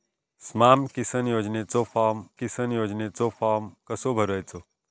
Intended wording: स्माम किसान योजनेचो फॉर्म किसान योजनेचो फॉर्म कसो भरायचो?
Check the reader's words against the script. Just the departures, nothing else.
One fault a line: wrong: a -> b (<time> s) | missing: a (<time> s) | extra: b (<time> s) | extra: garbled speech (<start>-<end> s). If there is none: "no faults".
no faults